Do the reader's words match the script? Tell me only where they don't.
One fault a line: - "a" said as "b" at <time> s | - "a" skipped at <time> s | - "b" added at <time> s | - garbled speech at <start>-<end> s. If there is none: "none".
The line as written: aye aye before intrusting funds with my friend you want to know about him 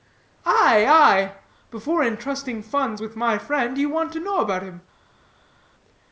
none